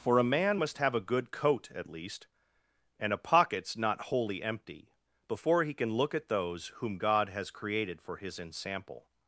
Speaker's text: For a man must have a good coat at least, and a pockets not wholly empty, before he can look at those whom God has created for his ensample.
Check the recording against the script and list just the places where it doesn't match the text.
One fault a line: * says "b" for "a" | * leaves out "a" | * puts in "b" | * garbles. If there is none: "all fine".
all fine